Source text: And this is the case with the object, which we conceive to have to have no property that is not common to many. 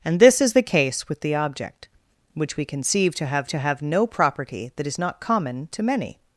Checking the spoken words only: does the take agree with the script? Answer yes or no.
yes